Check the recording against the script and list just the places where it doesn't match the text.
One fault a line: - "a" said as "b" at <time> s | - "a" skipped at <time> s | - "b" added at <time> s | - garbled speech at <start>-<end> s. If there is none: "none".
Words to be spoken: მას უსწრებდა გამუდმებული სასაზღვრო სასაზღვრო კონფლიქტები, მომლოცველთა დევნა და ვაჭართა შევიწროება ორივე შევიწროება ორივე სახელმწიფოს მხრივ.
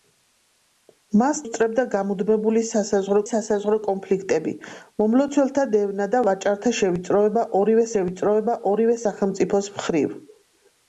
none